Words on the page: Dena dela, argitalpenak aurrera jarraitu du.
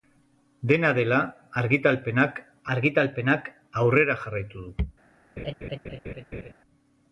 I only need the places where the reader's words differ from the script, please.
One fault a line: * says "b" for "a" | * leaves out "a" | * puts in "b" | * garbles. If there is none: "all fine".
* puts in "argitalpenak"